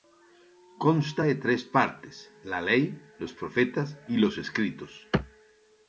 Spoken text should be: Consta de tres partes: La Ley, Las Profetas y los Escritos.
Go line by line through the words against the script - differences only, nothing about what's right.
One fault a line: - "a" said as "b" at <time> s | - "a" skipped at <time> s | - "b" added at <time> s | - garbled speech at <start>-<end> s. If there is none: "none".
- "Las" said as "Los" at 3.2 s